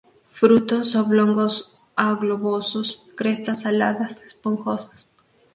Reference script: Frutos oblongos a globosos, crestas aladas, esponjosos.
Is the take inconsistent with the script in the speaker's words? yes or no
no